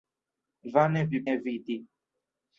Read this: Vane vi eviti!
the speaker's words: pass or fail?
pass